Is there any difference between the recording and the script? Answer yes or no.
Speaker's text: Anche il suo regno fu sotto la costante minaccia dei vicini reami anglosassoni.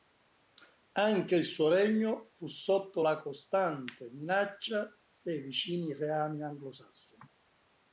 no